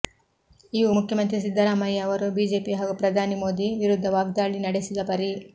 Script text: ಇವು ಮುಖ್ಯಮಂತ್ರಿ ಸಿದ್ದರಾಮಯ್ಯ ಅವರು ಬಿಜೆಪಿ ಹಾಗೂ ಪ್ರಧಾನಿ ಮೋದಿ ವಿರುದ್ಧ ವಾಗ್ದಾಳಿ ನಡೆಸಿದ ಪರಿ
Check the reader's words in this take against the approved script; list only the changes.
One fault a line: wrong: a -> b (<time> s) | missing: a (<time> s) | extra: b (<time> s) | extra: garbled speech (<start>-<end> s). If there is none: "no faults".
no faults